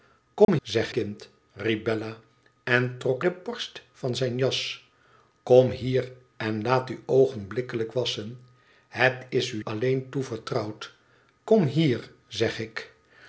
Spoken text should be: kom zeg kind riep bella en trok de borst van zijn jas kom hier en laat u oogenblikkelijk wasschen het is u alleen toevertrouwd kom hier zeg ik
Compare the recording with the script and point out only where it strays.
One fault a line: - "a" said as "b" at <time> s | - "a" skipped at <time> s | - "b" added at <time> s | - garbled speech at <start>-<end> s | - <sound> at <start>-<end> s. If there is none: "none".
- dropout at 0.4-0.5 s